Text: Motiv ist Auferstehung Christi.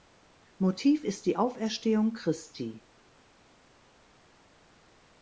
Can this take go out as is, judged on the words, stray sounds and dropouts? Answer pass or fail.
fail